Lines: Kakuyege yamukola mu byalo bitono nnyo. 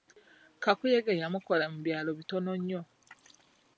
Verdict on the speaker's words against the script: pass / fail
pass